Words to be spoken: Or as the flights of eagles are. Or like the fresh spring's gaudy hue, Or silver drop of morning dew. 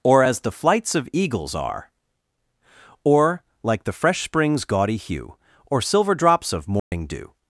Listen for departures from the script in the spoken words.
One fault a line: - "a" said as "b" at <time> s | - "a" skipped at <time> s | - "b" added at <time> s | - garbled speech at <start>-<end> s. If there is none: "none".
- "drop" said as "drops" at 6.1 s